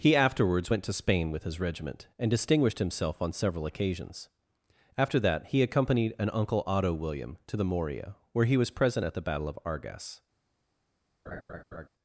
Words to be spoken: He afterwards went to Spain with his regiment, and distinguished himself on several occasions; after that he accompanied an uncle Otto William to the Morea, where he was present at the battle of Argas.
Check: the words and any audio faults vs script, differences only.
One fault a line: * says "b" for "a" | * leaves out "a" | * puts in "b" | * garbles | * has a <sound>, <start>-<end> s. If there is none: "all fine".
* has a laugh, 11.3-11.9 s